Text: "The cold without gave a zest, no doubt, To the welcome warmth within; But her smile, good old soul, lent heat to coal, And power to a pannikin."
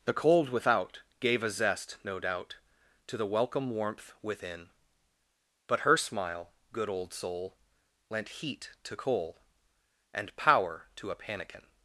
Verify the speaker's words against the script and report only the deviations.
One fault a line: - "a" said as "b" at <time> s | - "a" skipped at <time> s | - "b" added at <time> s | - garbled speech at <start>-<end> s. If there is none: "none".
none